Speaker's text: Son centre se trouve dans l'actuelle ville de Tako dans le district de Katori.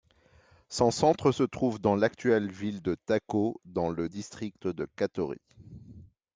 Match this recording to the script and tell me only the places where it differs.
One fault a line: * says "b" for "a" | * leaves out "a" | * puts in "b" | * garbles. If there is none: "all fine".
all fine